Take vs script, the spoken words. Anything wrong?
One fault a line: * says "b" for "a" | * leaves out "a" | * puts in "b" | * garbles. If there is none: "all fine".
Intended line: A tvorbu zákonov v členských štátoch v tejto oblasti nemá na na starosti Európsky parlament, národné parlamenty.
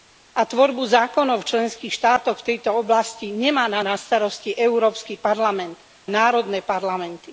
all fine